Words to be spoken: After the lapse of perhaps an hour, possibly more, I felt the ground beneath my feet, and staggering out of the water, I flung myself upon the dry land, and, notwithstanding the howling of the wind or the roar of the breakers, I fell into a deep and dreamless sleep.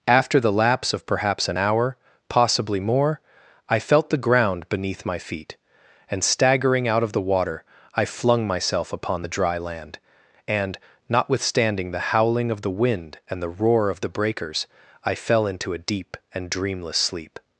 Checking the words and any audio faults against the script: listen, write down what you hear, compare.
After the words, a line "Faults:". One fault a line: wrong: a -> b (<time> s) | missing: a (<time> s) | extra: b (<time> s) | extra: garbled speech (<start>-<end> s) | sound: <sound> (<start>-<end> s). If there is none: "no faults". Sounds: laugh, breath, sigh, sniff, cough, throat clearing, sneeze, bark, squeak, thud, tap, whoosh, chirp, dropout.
After the lapse of perhaps an hour, possibly more, I felt the ground beneath my feet, and staggering out of the water, I flung myself upon the dry land, and, notwithstanding the howling of the wind and the roar of the breakers, I fell into a deep and dreamless sleep.
Faults:
wrong: or -> and (13.3 s)